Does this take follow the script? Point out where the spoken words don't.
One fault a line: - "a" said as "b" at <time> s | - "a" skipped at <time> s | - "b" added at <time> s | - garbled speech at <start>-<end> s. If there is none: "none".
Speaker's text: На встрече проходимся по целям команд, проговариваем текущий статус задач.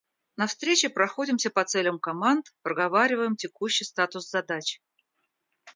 none